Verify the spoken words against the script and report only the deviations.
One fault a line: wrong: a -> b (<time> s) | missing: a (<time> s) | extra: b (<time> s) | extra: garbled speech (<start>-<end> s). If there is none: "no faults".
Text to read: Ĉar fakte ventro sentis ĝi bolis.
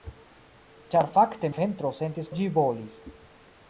no faults